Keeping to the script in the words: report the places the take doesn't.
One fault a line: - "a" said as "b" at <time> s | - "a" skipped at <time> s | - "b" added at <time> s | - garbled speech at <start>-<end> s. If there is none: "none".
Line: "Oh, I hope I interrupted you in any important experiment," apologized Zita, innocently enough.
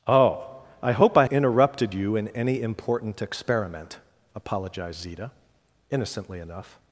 none